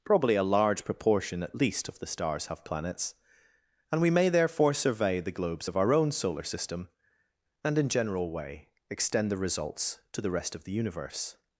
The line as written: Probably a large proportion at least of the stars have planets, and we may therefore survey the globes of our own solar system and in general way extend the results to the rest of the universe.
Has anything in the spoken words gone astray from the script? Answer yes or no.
no